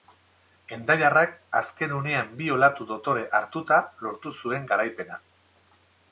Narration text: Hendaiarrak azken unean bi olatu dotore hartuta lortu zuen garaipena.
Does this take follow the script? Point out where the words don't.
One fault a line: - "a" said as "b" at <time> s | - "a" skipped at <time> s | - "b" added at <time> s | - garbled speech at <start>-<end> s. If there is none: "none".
none